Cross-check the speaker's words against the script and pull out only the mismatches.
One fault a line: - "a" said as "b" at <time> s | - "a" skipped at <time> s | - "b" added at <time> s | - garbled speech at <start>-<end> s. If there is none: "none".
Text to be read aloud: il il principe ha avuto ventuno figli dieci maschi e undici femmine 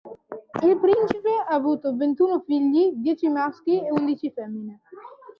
- "il" skipped at 0.8 s